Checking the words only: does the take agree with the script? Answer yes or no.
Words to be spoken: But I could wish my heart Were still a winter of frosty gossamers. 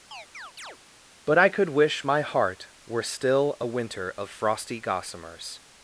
yes